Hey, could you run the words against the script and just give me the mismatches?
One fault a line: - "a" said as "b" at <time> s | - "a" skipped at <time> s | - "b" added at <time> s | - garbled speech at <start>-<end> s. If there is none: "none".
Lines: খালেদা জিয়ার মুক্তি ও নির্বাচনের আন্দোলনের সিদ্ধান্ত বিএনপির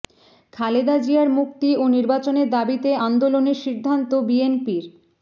- "দাবিতে" added at 2.5 s